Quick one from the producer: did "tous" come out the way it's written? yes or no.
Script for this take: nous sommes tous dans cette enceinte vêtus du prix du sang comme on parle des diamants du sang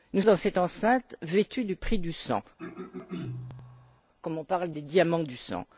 no